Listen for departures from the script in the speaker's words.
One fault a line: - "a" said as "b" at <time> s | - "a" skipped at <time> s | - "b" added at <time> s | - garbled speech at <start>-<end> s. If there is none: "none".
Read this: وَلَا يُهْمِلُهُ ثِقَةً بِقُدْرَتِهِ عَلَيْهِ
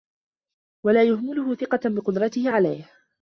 none